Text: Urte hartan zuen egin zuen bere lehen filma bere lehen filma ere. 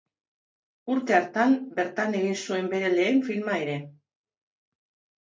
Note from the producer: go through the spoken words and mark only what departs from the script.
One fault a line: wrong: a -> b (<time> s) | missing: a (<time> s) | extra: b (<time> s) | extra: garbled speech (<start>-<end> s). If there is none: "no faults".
wrong: zuen -> bertan (1.8 s)
missing: bere lehen filma (3.6 s)